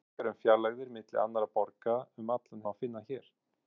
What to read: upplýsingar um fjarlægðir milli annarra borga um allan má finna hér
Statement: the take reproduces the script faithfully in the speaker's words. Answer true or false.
true